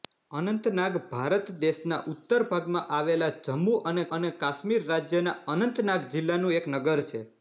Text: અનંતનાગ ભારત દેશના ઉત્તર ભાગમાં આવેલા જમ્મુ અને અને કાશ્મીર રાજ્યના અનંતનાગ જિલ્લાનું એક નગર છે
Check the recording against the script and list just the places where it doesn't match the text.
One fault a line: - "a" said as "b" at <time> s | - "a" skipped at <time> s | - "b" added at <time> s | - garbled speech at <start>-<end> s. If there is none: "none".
none